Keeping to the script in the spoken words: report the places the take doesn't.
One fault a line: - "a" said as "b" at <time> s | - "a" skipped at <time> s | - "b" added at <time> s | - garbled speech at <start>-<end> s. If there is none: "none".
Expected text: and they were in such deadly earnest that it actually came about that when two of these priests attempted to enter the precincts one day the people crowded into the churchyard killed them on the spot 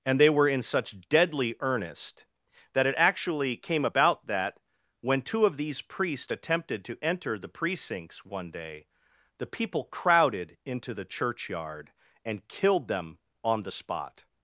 - "and" added at 12.2 s